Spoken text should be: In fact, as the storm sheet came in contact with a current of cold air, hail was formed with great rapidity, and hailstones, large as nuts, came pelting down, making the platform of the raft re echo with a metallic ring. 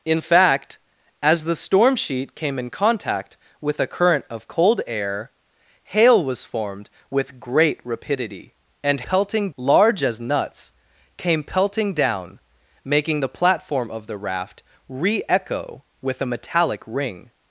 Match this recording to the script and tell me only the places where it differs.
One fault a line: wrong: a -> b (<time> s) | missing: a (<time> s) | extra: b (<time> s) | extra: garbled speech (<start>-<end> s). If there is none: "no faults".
wrong: hailstones -> pelting (9.0 s)